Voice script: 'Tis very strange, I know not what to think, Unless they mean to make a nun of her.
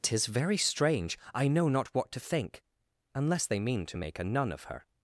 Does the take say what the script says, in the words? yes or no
yes